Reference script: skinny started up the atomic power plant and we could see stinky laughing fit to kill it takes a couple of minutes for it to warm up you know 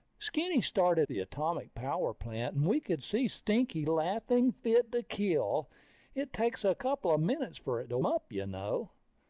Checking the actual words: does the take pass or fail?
fail